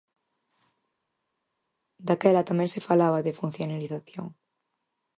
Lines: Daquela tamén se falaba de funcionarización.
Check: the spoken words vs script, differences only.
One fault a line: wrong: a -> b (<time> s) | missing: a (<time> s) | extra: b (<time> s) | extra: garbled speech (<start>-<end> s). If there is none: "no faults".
no faults